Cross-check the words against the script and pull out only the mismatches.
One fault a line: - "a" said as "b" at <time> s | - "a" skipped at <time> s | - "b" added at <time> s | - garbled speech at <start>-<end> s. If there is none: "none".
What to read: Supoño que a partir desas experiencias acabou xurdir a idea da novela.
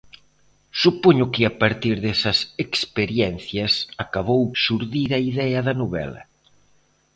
none